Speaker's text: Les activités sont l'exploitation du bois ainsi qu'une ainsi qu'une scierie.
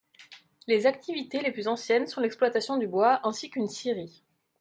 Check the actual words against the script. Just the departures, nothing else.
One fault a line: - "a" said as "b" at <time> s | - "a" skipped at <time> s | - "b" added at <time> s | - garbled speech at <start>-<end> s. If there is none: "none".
- "les plus anciennes" added at 1.4 s
- "ainsi qu'une" skipped at 3.7 s